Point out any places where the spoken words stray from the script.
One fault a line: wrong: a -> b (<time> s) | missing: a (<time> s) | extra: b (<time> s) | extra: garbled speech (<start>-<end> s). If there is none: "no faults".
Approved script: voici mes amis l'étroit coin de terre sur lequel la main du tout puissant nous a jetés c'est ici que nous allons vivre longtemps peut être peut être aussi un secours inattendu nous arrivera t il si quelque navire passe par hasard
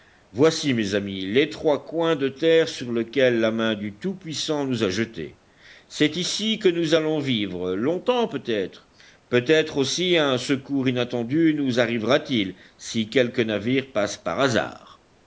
no faults